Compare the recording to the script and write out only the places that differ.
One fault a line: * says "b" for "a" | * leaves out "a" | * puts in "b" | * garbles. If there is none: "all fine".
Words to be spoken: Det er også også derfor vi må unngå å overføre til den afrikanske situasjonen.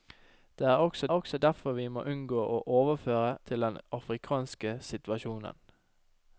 all fine